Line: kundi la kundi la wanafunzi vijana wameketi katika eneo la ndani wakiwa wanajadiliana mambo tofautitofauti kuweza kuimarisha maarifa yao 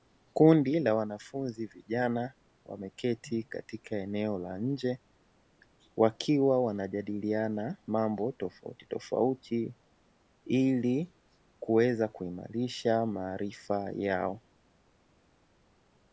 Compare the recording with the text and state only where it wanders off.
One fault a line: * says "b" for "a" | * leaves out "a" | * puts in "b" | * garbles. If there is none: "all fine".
* leaves out "kundi la"
* says "nje" for "ndani"
* puts in "ili"